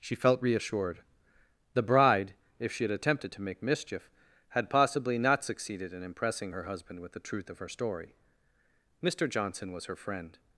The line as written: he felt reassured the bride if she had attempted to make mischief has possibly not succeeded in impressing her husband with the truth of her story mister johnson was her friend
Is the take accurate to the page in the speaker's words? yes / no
no